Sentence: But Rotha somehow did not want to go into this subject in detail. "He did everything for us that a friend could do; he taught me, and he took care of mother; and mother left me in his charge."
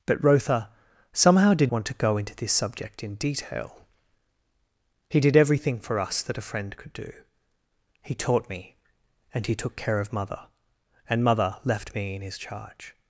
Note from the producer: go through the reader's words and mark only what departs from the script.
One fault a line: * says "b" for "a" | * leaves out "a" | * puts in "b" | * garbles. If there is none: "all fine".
* leaves out "not"